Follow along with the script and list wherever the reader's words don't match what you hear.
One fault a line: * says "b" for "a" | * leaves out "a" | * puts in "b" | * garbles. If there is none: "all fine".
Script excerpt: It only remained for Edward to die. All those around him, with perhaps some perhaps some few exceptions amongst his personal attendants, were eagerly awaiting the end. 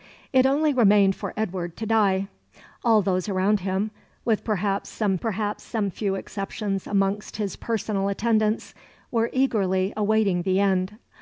all fine